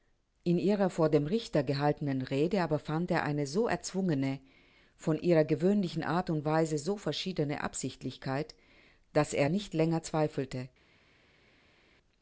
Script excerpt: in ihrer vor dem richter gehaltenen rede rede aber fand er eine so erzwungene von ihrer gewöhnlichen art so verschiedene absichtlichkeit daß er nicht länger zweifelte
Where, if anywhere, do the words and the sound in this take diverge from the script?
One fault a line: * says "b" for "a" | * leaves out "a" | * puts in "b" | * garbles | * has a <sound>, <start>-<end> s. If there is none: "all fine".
* leaves out "rede"
* puts in "und weise"